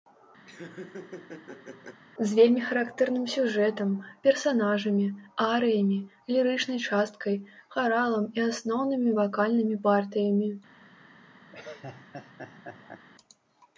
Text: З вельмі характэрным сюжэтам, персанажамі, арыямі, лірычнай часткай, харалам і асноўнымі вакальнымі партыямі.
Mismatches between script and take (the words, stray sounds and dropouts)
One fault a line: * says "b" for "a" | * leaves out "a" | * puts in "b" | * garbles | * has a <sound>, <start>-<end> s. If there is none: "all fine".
* has a laugh, 0.5-2.0 s
* has a laugh, 11.5-13.0 s